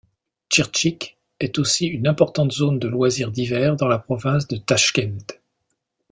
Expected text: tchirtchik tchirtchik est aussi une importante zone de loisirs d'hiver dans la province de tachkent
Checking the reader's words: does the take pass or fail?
fail